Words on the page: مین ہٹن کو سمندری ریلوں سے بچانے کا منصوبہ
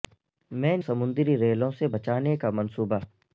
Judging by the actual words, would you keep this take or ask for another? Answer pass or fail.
fail